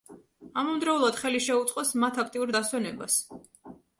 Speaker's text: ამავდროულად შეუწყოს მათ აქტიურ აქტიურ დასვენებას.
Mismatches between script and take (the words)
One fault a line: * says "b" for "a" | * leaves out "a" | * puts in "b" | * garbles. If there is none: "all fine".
* puts in "ხელი"
* leaves out "აქტიურ"